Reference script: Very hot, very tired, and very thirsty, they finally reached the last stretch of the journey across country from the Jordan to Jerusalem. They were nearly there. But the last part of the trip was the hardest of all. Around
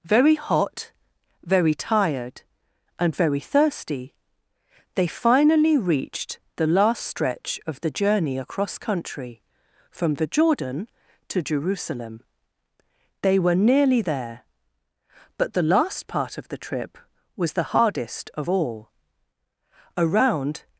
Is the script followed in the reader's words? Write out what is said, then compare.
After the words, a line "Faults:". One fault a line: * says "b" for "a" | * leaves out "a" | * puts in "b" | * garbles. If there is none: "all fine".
Very hot, very tired, and very thirsty, they finally reached the last stretch of the journey across country from the Jordan to Jerusalem. They were nearly there. But the last part of the trip was the hardest of all. Around
Faults:
all fine